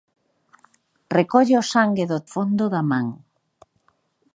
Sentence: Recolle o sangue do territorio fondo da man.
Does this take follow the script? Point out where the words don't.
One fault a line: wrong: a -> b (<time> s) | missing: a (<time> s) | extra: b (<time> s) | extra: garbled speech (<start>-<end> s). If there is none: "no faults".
missing: territorio (2.2 s)